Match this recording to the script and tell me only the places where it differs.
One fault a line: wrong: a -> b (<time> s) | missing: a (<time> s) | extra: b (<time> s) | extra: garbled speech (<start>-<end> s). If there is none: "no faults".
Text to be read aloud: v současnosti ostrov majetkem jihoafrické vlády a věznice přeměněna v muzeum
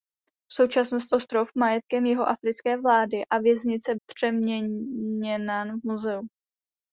no faults